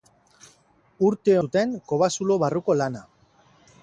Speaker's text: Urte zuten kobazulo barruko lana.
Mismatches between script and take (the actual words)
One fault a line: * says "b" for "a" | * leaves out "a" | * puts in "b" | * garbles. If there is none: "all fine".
all fine